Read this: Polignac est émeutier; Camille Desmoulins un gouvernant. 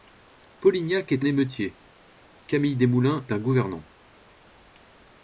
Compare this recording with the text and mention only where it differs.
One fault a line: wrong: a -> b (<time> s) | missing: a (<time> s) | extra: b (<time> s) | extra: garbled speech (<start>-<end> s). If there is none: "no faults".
no faults